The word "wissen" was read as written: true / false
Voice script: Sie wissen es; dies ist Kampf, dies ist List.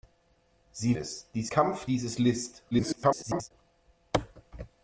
false